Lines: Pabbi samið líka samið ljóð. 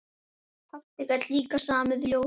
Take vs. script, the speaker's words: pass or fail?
fail